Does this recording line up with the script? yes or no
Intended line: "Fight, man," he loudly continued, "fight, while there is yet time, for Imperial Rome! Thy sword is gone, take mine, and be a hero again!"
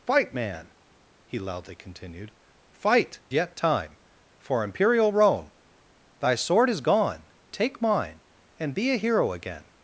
no